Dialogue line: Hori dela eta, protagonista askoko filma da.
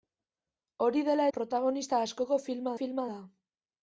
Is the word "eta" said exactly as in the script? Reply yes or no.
no